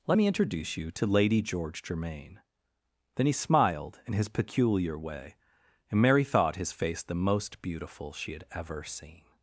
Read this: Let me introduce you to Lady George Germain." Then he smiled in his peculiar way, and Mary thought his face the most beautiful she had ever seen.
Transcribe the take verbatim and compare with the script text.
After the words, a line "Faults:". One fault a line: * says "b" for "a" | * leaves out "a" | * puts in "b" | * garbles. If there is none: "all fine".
Let me introduce you to Lady George Germain." Then he smiled in his peculiar way, and Mary thought his face the most beautiful she had ever seen.
Faults:
all fine